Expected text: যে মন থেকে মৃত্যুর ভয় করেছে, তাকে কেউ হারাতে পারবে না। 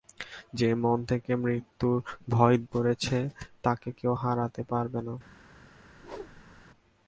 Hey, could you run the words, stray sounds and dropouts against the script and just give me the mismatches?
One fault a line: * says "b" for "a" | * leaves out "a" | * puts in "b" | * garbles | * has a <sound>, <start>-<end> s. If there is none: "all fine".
* has a whoosh, 5.9-6.6 s